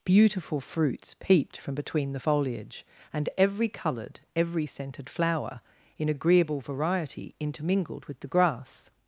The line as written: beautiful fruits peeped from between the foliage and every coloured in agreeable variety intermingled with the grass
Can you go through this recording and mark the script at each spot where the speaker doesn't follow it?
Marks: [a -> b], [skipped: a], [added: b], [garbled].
beautiful fruits peeped from between the foliage and every coloured [added: every scented flower] in agreeable variety intermingled with the grass